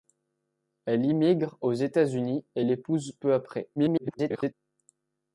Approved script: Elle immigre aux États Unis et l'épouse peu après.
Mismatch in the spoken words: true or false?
true